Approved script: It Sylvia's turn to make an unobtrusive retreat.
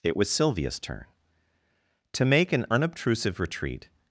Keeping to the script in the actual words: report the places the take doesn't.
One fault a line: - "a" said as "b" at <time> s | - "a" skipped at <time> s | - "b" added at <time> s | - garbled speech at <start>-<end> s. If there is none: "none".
- "was" added at 0.2 s